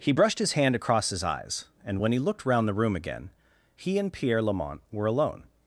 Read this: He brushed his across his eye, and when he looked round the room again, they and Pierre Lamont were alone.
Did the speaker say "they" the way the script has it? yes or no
no